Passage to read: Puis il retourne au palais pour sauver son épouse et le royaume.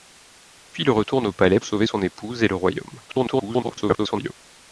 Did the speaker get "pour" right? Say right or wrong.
wrong